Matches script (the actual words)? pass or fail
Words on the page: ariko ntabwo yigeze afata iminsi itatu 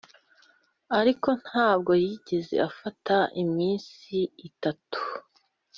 pass